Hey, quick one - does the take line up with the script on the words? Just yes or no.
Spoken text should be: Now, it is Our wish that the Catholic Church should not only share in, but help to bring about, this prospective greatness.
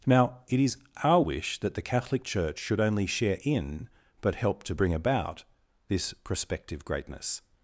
no